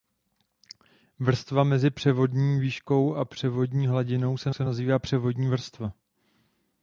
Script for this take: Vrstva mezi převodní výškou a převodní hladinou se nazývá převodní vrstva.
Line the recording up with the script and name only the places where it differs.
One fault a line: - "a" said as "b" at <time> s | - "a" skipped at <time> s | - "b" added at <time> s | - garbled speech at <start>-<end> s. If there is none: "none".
- "se" added at 4.5 s